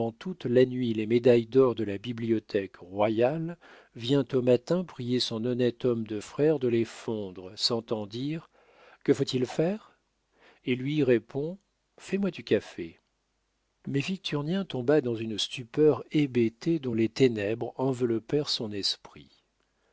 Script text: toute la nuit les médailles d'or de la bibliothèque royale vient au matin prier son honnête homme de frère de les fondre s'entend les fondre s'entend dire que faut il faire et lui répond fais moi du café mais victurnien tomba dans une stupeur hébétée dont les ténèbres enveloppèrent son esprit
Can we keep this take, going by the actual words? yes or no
no